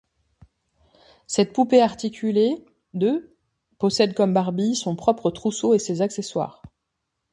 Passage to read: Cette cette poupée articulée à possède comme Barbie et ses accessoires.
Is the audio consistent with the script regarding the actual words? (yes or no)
no